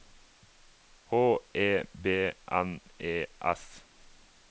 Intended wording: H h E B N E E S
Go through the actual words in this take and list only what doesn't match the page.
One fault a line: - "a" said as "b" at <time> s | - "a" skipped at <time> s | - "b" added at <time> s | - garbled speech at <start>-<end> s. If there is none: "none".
- "h" skipped at 1.4 s
- "E" skipped at 3.3 s